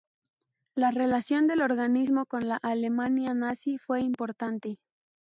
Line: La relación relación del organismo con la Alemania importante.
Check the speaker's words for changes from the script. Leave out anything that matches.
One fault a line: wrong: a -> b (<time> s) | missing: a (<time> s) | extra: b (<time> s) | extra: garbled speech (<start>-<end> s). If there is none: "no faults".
missing: relación (1.4 s)
extra: nazi fue (3.4 s)